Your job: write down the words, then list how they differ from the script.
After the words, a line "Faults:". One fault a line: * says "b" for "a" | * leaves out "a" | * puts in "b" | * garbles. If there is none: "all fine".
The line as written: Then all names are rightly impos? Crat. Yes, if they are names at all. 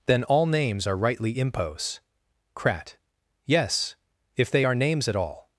Then all names are rightly impos? Crat. Yes, if they are names at all.
Faults:
all fine